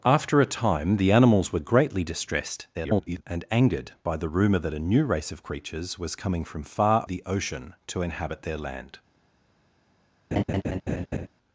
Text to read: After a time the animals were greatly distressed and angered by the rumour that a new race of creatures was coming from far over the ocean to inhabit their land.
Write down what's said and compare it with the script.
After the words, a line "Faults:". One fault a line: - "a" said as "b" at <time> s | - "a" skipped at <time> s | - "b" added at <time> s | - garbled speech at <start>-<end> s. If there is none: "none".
After a time the animals were greatly distressed [garbled] and angered by the rumour that a new race of creatures was coming from far the ocean to inhabit their land.
Faults:
- garbled speech at 2.7-3.2 s
- "over" skipped at 7.0 s